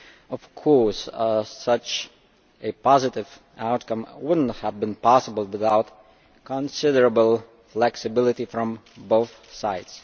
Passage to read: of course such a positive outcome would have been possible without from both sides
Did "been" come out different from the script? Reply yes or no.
no